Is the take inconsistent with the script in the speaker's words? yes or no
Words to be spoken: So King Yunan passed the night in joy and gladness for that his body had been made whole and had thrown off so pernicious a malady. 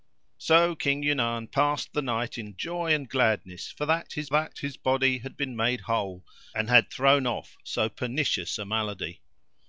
yes